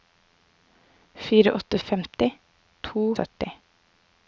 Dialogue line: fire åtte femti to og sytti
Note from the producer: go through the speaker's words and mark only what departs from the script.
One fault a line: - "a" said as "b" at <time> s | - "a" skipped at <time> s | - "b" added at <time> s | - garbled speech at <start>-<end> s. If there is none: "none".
none